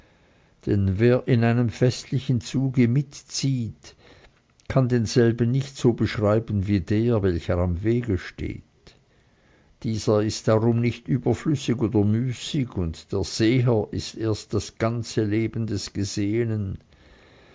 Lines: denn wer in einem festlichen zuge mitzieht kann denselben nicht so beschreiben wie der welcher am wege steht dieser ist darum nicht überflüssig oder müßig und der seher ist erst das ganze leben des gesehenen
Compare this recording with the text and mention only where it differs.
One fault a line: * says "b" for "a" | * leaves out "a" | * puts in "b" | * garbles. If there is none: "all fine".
all fine